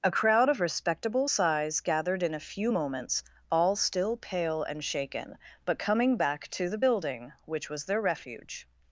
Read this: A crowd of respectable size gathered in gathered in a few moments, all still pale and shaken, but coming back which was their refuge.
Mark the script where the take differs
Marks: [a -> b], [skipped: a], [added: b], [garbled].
A crowd of respectable size gathered in [skipped: gathered in] a few moments, all still pale and shaken, but coming back [added: to the building] which was their refuge.